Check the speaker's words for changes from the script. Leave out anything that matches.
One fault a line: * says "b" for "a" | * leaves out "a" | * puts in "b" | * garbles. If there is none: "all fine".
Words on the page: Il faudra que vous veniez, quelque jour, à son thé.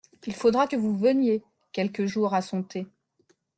all fine